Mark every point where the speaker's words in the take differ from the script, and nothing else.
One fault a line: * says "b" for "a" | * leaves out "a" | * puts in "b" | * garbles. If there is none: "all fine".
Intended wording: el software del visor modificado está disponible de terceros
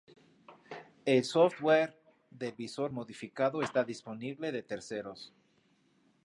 all fine